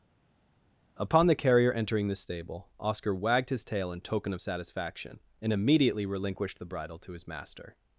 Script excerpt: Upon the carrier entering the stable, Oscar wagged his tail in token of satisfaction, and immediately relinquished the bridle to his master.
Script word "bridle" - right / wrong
right